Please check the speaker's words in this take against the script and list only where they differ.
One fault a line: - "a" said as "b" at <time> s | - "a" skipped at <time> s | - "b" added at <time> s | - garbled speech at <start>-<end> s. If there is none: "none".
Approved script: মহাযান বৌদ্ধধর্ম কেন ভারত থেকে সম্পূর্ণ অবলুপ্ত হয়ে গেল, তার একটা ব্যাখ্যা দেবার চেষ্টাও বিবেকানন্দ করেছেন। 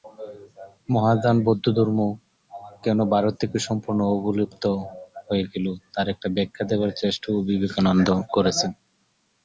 none